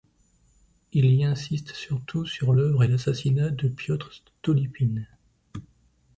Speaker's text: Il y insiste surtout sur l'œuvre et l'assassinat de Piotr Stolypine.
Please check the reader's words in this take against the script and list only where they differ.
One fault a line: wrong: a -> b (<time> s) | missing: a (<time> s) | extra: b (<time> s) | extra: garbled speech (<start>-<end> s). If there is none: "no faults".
no faults